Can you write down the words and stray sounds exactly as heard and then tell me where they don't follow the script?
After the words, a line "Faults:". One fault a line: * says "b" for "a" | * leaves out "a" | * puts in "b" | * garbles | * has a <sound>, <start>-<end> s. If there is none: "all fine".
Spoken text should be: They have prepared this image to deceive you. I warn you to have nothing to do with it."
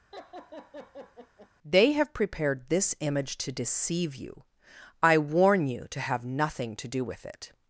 They have prepared this image to deceive you. I warn you to have nothing to do with it."
Faults:
* has a laugh, 0.1-1.5 s